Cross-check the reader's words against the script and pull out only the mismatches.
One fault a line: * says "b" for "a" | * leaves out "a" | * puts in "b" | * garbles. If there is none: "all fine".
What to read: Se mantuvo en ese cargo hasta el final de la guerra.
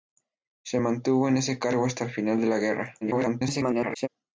* garbles